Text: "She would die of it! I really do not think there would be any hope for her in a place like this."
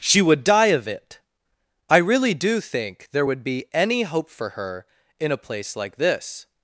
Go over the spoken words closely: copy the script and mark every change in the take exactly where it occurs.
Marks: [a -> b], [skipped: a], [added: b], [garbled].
"She would die of it! I really do [skipped: not] think there would be any hope for her in a place like this."